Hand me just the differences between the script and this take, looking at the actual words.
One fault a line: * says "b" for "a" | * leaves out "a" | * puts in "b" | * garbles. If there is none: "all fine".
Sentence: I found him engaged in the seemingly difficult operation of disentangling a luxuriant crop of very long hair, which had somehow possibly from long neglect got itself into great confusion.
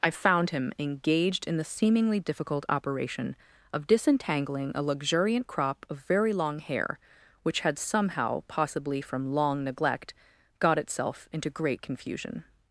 all fine